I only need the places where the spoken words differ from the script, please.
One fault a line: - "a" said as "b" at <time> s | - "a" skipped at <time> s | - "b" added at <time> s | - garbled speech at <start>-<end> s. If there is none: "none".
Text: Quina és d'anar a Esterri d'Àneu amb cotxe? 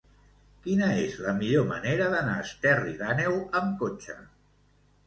- "la millor manera" added at 1.2 s